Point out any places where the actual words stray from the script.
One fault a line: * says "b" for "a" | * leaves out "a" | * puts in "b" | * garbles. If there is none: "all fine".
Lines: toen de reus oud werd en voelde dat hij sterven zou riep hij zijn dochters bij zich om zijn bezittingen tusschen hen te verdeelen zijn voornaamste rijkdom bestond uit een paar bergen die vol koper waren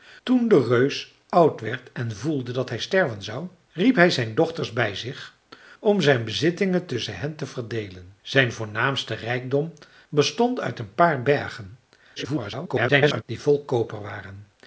* garbles